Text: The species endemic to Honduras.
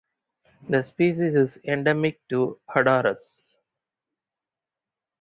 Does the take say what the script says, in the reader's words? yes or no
no